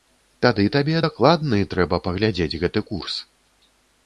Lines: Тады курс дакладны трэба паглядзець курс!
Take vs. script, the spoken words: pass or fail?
fail